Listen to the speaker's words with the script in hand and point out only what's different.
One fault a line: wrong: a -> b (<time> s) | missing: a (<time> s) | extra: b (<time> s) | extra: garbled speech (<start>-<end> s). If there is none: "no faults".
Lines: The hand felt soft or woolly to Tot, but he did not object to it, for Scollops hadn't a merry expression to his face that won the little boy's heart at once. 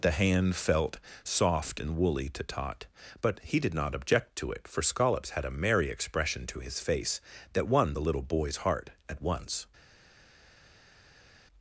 wrong: or -> and (1.8 s)
wrong: hadn't -> had (5.3 s)